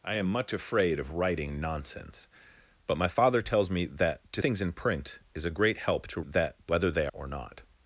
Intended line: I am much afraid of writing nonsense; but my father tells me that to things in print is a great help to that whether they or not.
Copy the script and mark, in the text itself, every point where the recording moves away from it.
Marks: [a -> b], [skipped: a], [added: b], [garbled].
I am much afraid of writing nonsense; but my father tells me that to things in print is a great help to that whether they or not.